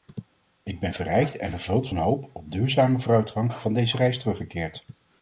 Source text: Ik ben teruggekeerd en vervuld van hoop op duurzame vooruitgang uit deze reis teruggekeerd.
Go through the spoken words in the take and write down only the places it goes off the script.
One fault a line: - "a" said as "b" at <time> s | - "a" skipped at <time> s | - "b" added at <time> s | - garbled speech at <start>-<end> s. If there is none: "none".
- "teruggekeerd" said as "verrijkt" at 0.9 s
- "uit" said as "van" at 3.5 s